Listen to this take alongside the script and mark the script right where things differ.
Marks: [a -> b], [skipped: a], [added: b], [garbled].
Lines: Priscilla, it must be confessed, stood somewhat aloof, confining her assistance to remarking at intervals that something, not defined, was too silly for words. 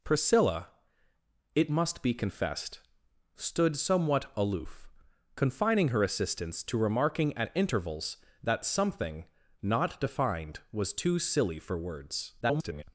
Priscilla, it must be confessed, stood somewhat aloof, confining her assistance to remarking at intervals that something, not defined, was too silly for words. [garbled]